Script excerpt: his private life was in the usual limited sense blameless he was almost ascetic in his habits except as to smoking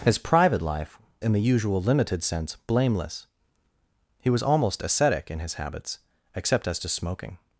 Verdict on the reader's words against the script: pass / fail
fail